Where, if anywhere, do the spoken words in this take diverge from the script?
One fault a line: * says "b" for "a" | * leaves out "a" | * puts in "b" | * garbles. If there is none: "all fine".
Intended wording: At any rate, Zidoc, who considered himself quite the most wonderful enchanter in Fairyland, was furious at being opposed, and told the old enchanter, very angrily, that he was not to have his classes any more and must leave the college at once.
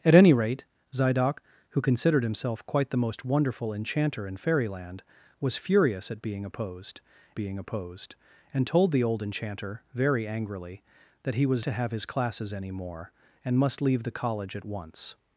* puts in "being opposed"
* leaves out "not"